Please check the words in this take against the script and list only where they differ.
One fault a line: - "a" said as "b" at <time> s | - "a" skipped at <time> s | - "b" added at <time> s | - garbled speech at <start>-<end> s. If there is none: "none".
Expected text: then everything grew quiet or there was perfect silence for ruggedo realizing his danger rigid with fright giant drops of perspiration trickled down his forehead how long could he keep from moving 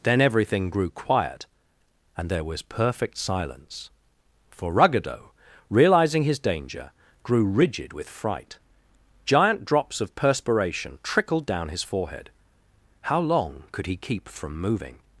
- "or" said as "and" at 2.2 s
- "grew" added at 7.2 s